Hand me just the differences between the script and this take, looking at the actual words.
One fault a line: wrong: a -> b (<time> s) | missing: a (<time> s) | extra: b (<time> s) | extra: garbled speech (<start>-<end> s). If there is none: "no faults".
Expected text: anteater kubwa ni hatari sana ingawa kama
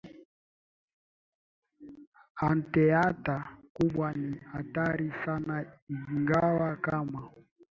no faults